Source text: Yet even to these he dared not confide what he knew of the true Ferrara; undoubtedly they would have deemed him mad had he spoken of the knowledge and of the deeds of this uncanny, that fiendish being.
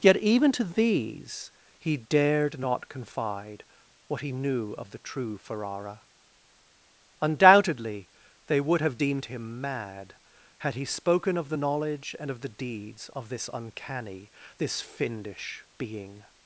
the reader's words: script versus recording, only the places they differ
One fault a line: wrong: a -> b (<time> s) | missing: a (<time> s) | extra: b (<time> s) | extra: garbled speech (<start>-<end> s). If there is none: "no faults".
wrong: that -> this (14.6 s)